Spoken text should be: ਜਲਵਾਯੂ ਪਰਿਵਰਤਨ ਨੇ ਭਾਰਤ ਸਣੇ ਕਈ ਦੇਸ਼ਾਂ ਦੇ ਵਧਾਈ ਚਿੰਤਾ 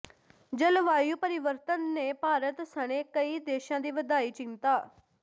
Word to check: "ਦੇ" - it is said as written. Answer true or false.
false